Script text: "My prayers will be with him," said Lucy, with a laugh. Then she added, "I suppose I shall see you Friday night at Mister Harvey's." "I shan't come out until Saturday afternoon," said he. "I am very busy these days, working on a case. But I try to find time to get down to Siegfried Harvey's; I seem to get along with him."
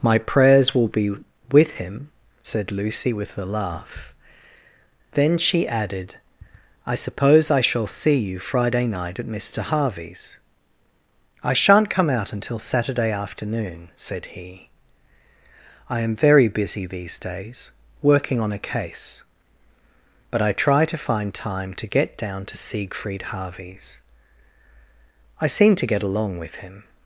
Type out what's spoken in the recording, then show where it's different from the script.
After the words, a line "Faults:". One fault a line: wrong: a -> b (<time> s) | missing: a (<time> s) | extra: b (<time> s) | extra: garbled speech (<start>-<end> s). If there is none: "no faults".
"My prayers will be with him," said Lucy, with a laugh. Then she added, "I suppose I shall see you Friday night at Mister Harvey's." "I shan't come out until Saturday afternoon," said he. "I am very busy these days, working on a case. But I try to find time to get down to Siegfried Harvey's; I seem to get along with him."
Faults:
no faults